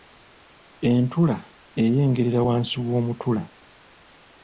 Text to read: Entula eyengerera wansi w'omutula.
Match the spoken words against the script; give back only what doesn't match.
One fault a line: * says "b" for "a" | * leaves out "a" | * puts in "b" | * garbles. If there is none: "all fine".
all fine